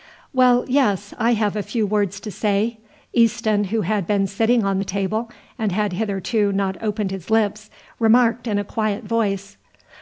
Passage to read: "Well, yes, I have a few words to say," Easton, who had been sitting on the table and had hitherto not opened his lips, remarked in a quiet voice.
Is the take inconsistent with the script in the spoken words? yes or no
no